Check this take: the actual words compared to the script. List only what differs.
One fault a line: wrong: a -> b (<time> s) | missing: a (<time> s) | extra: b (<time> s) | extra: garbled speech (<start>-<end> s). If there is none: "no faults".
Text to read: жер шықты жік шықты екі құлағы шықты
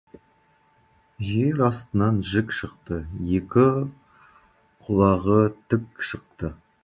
wrong: шықты -> астынан (1.6 s)
extra: тік (5.7 s)